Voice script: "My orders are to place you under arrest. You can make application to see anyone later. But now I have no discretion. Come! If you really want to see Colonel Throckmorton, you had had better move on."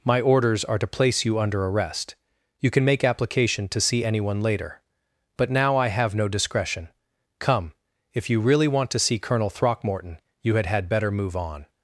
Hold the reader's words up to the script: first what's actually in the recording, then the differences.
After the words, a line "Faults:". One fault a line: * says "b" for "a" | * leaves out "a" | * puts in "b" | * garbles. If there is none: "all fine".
"My orders are to place you under arrest. You can make application to see anyone later. But now I have no discretion. Come! If you really want to see Colonel Throckmorton, you had had better move on."
Faults:
all fine